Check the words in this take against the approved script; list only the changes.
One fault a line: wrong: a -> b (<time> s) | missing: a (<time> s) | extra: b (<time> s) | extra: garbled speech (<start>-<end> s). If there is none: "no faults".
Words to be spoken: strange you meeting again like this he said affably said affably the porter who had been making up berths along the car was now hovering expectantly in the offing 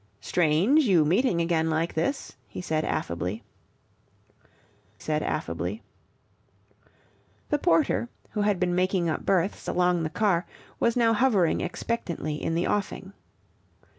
no faults